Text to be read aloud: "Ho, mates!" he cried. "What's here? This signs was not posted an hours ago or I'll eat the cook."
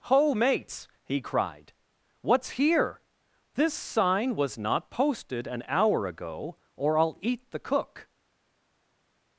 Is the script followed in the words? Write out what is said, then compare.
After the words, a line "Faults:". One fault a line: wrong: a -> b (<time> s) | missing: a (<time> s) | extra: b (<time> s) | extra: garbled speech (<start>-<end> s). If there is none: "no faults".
"Ho, mates!" he cried. "What's here? This sign was not posted an hour ago or I'll eat the cook."
Faults:
wrong: signs -> sign (3.7 s)
wrong: hours -> hour (5.7 s)